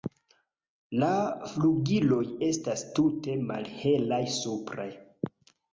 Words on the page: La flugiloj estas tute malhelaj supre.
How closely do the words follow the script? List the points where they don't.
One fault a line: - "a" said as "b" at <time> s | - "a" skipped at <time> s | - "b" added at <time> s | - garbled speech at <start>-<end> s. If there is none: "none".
none